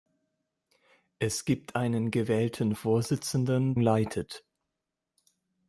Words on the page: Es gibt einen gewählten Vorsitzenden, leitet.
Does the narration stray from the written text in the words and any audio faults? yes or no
no